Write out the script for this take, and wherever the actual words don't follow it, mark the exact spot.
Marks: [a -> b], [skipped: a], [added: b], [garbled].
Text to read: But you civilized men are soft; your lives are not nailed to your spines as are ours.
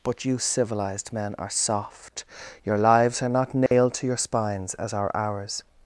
But you civilized men are soft; your lives are not nailed to your spines as are ours.